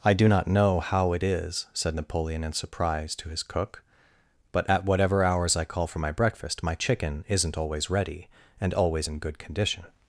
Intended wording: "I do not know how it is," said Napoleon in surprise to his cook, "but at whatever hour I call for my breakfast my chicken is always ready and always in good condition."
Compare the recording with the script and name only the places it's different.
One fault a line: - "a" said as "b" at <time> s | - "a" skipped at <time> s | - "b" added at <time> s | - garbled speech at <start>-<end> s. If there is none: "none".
- "hour" said as "hours" at 5.2 s
- "is" said as "isn't" at 7.3 s